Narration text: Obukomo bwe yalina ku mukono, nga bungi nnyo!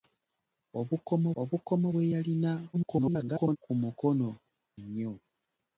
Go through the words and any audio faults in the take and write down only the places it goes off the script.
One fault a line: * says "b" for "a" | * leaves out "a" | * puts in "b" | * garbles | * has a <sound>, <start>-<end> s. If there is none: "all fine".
* puts in "obukomo"
* garbles
* leaves out "nga bungi"